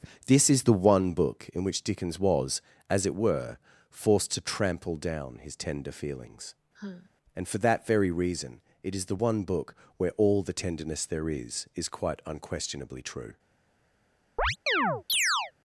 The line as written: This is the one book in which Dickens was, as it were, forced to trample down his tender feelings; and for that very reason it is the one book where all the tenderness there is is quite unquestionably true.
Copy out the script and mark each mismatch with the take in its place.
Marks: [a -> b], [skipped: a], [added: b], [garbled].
This is the one book in which Dickens was, as it were, forced to trample down his tender feelings; and for that very reason it is the one book where all the tenderness there is is quite unquestionably true.